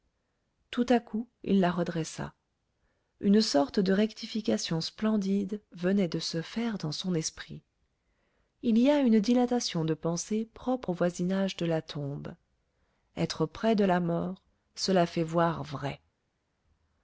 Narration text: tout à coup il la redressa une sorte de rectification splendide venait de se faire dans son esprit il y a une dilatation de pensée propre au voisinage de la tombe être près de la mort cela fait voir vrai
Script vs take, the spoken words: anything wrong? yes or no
no